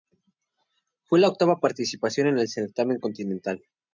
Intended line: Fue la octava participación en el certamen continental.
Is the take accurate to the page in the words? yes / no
yes